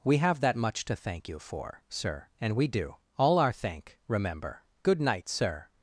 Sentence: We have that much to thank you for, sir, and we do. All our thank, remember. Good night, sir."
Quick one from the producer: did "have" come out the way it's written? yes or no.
yes